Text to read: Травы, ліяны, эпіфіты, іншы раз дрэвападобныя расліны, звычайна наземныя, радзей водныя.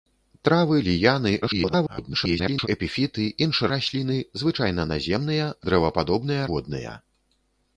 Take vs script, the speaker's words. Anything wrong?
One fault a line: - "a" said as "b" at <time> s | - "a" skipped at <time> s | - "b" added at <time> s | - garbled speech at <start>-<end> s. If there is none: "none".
- garbled speech at 1.4-2.7 s
- "раз дрэвападобныя" skipped at 3.7 s
- "радзей" said as "дрэвападобныя" at 5.7 s